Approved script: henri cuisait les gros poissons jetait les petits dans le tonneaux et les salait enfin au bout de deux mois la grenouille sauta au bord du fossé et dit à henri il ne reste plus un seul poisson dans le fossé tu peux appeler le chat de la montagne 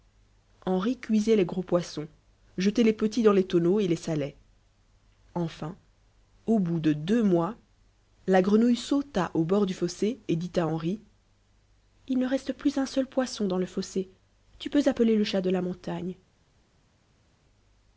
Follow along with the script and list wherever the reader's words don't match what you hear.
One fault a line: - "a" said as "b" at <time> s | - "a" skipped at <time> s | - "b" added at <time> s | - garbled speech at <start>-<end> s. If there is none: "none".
- "le" said as "les" at 3.3 s